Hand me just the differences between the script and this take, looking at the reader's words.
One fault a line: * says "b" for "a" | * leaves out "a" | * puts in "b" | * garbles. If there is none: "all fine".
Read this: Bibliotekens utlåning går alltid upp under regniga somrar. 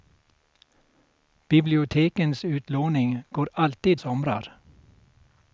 * leaves out "upp under regniga"